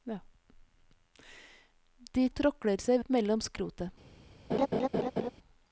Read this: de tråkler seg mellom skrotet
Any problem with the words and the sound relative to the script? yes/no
yes